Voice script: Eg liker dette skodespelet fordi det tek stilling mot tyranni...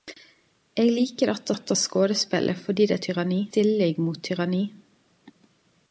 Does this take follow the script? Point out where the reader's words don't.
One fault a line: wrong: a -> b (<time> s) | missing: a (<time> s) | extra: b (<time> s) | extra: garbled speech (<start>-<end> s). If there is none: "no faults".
extra: dette (1.5 s)
wrong: tek -> tyranni (3.1 s)